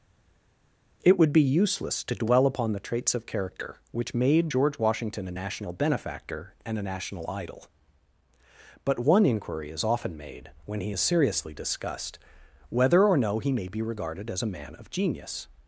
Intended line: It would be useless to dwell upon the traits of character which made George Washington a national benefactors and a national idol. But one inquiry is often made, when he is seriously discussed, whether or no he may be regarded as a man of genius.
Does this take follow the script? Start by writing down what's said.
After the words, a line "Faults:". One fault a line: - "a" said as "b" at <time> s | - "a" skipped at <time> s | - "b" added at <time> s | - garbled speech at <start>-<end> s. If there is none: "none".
It would be useless to dwell upon the traits of character which made George Washington a national benefactor and a national idol. But one inquiry is often made, when he is seriously discussed, whether or no he may be regarded as a man of genius.
Faults:
- "benefactors" said as "benefactor" at 5.7 s